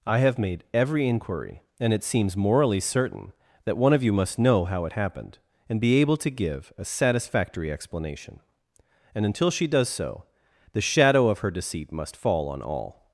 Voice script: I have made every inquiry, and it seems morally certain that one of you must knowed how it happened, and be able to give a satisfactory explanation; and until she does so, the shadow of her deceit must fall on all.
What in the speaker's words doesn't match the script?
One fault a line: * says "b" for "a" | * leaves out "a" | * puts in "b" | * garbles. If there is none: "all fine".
* says "know" for "knowed"